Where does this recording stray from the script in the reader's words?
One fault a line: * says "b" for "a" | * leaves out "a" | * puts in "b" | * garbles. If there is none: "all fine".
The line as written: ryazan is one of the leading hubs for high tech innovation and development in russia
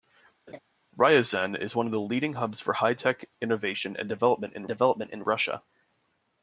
* puts in "development in"